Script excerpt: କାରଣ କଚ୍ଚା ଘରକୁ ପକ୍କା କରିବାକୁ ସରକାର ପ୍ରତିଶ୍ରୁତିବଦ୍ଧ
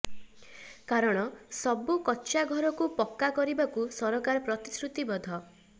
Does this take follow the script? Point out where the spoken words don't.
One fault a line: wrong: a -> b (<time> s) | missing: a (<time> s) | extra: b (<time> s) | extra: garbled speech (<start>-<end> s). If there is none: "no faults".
extra: ସବୁ (1.6 s)